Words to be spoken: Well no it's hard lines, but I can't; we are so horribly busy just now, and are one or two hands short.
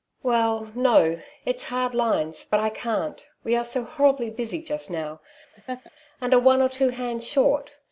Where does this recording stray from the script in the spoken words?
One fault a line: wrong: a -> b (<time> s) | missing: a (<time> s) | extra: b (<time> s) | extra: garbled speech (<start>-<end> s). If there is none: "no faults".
no faults